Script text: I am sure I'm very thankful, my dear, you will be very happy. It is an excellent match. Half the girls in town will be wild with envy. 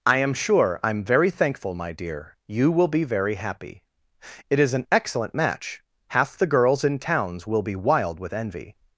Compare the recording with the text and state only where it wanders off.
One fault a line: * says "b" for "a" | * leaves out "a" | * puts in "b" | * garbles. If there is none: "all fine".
* says "towns" for "town"